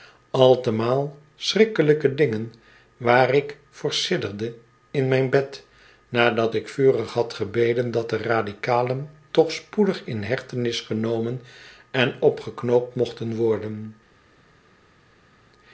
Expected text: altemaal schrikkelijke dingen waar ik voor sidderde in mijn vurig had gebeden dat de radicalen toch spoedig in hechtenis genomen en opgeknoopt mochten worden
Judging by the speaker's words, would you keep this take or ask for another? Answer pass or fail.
fail